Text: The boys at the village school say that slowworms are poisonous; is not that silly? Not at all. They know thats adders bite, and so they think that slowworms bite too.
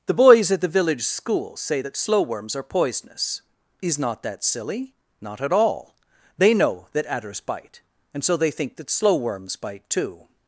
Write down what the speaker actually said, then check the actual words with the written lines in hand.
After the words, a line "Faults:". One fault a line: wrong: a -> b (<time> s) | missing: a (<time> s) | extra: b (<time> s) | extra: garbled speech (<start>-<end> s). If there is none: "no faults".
The boys at the village school say that slowworms are poisonous; is not that silly? Not at all. They know that adders bite, and so they think that slowworms bite too.
Faults:
wrong: thats -> that (6.9 s)